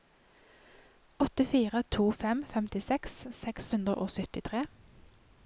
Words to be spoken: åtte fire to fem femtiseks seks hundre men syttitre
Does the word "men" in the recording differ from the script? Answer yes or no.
yes